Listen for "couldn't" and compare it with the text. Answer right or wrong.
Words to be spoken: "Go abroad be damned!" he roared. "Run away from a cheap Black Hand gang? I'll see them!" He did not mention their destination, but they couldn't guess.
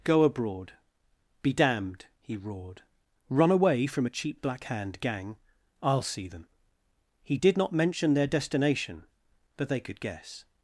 wrong